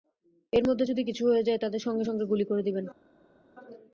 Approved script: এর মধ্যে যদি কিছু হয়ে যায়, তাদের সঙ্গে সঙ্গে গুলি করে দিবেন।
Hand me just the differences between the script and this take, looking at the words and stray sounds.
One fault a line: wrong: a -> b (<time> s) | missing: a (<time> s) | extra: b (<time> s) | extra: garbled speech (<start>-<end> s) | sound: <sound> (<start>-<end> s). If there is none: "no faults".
no faults